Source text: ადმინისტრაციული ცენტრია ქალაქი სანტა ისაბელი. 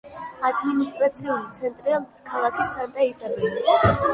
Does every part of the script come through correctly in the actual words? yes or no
yes